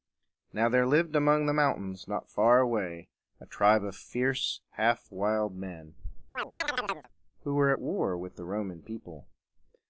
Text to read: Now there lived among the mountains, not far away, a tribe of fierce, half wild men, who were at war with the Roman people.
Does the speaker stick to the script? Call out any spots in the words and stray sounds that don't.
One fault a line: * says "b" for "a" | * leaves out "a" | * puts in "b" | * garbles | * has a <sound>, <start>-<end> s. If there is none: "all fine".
* has a chirp, 6.3-7.1 s